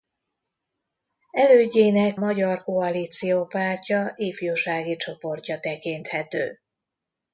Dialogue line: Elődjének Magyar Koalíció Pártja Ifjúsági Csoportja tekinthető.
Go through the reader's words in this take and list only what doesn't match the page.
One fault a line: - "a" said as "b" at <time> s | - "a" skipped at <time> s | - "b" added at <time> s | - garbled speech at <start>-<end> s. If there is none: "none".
none